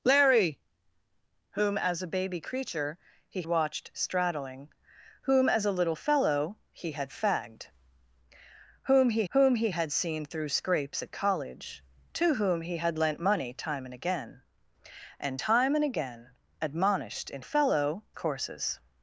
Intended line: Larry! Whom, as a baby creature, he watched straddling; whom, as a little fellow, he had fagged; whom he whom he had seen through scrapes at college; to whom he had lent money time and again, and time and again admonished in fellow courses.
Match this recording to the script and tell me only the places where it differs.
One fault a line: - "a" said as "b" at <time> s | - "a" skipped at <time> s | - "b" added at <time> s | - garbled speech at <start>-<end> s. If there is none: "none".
none